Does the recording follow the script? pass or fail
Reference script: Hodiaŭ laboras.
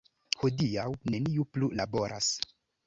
fail